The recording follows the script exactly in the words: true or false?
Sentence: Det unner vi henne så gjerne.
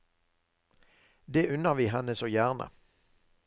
true